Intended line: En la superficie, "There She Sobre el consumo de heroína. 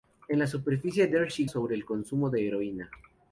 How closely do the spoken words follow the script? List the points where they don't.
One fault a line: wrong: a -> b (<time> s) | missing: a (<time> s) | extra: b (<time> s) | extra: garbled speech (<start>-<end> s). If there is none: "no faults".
no faults